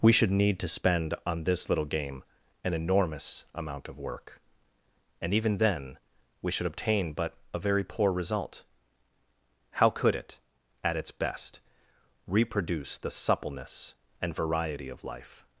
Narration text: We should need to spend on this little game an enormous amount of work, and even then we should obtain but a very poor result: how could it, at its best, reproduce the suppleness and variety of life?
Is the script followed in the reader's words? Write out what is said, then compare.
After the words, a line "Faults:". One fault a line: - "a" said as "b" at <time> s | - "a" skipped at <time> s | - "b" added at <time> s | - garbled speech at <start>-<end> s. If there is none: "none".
We should need to spend on this little game an enormous amount of work, and even then we should obtain but a very poor result: how could it, at its best, reproduce the suppleness and variety of life?
Faults:
none